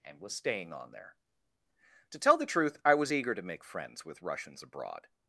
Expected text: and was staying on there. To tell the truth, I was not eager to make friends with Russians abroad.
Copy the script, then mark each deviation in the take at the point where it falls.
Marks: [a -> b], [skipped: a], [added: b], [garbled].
and was staying on there. To tell the truth, I was [skipped: not] eager to make friends with Russians abroad.